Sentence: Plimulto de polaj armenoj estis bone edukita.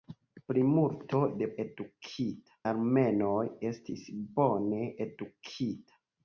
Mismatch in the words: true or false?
true